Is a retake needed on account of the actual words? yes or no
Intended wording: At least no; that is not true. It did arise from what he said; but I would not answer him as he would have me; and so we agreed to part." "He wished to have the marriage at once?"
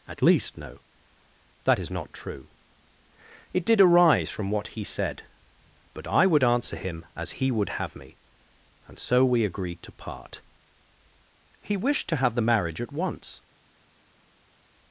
yes